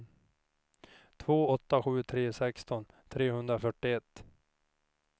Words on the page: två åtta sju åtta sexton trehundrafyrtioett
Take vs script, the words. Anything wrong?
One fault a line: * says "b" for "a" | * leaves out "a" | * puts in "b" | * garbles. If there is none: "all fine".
* says "tre" for "åtta"